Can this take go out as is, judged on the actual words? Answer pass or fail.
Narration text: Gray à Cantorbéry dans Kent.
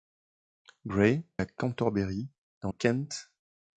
pass